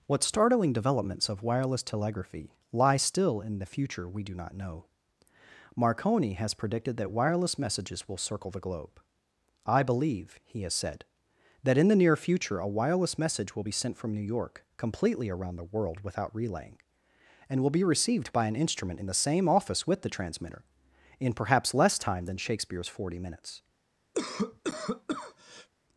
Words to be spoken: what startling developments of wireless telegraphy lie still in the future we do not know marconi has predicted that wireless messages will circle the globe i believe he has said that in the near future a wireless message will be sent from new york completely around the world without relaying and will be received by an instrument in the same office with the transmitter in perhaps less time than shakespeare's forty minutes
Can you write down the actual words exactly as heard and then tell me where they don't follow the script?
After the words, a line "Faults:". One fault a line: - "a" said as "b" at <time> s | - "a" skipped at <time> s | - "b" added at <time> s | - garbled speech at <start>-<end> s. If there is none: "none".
what startling developments of wireless telegraphy lie still in the future we do not know marconi has predicted that wireless messages will circle the globe i believe he has said that in the near future a wireless message will be sent from new york completely around the world without relaying and will be received by an instrument in the same office with the transmitter in perhaps less time than shakespeare's forty minutes
Faults:
none